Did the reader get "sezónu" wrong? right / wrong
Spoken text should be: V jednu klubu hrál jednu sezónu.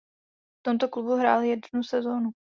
right